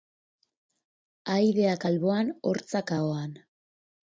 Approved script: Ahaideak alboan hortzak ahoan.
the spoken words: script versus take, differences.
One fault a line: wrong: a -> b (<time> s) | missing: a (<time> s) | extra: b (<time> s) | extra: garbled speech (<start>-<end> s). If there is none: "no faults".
no faults